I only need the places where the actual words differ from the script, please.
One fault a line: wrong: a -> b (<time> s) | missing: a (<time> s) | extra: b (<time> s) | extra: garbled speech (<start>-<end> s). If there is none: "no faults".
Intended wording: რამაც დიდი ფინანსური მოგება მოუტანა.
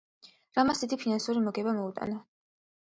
no faults